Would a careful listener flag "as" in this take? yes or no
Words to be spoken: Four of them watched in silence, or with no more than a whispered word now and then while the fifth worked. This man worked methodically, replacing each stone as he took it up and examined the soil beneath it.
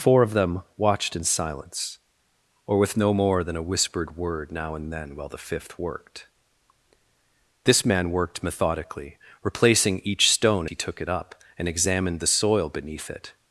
yes